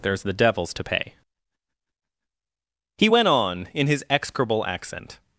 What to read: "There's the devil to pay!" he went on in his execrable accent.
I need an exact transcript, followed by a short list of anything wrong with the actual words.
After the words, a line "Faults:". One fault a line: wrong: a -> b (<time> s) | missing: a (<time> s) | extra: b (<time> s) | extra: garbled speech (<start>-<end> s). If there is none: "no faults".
"There's the devils to pay!" he went on in his execrable accent.
Faults:
wrong: devil -> devils (0.3 s)